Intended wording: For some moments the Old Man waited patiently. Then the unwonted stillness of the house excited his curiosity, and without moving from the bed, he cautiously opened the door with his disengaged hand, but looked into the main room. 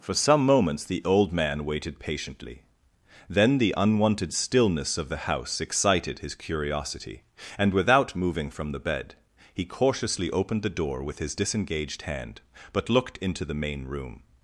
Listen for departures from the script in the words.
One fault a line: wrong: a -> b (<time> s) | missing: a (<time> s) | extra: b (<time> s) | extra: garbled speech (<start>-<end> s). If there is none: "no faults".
no faults